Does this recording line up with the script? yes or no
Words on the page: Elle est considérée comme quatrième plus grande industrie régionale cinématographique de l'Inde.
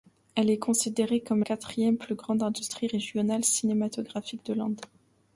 yes